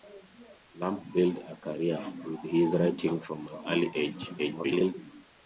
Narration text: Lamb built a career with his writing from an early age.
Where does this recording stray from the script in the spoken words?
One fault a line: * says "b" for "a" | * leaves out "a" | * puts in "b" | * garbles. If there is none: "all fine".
* garbles